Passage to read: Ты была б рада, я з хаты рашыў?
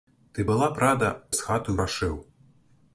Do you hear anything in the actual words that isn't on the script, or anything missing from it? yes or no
no